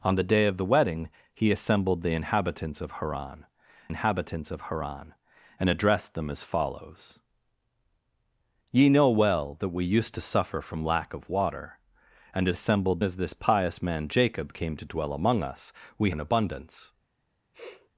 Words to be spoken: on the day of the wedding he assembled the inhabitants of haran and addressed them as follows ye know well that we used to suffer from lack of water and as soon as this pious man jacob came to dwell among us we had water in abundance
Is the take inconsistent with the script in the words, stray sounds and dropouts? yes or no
yes